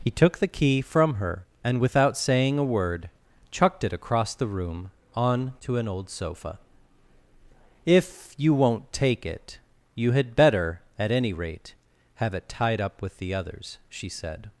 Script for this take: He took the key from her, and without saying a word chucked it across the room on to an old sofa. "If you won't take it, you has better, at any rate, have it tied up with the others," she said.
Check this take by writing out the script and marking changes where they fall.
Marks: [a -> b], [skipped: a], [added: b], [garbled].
He took the key from her, and without saying a word chucked it across the room on to an old sofa. "If you won't take it, you [has -> had] better, at any rate, have it tied up with the others," she said.